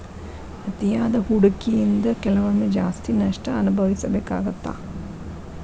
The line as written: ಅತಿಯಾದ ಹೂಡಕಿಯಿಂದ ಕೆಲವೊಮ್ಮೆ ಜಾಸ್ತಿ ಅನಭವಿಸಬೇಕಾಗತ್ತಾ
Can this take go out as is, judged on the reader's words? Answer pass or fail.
fail